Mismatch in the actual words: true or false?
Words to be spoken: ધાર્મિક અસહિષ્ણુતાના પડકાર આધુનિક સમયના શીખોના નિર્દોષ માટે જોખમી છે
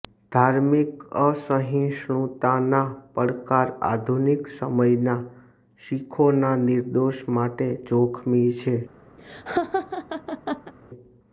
false